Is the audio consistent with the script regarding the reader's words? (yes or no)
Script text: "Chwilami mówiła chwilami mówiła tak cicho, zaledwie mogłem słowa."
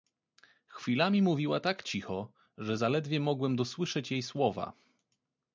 no